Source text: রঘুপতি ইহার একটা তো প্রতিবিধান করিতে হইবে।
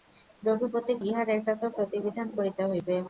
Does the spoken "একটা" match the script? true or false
true